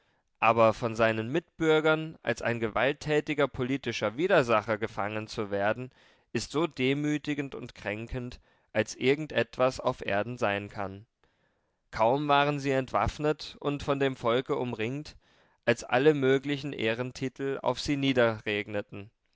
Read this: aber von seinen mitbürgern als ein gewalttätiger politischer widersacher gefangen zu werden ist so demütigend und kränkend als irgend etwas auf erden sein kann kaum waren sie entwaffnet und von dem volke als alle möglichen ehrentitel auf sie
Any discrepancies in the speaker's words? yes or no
yes